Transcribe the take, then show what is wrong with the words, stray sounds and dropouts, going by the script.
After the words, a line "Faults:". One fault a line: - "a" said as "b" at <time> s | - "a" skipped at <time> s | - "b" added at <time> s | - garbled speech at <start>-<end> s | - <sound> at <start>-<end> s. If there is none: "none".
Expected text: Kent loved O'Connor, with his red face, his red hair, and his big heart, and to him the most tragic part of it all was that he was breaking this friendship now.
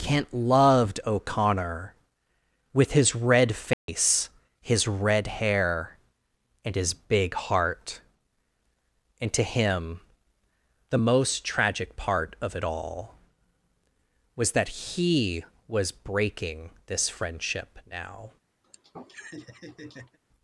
Kent loved O'Connor, with his red face, his red hair, and his big heart, and to him the most tragic part of it all was that he was breaking this friendship now.
Faults:
- dropout at 3.7-3.9 s
- laugh at 18.6-20.2 s